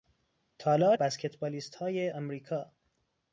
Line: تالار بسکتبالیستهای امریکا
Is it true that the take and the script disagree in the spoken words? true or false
false